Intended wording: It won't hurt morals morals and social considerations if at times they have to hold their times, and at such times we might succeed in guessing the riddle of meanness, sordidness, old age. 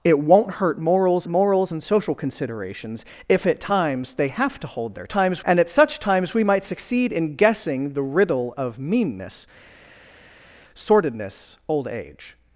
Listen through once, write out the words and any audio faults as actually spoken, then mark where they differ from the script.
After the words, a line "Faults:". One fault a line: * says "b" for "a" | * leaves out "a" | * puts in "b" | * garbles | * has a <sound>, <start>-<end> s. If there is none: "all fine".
It won't hurt morals morals and social considerations if at times they have to hold their times, and at such times we might succeed in guessing the riddle of meanness, sordidness, old age.
Faults:
all fine